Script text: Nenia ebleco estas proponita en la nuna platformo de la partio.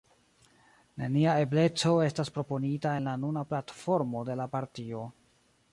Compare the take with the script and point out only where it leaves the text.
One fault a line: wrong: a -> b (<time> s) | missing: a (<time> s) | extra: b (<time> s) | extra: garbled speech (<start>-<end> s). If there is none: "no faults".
no faults